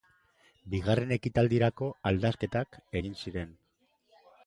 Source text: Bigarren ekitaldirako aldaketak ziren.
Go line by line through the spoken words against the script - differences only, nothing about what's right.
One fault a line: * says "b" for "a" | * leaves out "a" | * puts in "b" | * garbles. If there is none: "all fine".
* puts in "egin"